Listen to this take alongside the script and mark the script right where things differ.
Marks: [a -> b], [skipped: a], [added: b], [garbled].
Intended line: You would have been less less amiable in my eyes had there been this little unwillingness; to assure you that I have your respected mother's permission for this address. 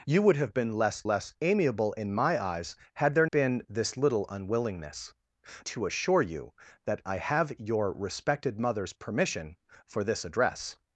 You would have been less less amiable in my eyes had there been this little unwillingness; to assure you that I have your respected mother's permission for this address.